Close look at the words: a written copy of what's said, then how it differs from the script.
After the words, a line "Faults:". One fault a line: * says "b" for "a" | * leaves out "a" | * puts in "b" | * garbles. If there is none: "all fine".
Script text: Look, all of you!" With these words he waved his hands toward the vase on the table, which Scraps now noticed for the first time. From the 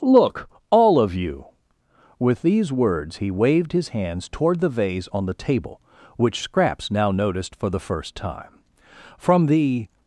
Look, all of you!" With these words he waved his hands toward the vase on the table, which Scraps now noticed for the first time. From the
Faults:
all fine